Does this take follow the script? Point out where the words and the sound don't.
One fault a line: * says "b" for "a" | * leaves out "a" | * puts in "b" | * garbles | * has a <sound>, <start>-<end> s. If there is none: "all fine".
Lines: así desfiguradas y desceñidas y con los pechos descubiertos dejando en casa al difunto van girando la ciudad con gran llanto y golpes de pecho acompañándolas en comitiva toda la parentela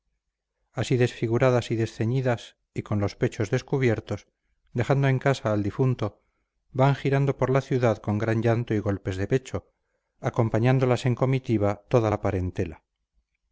* puts in "por"